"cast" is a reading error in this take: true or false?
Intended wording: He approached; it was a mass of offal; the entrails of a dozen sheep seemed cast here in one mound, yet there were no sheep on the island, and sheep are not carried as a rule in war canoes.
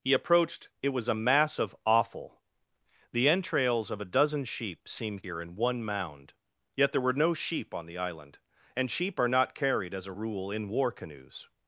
true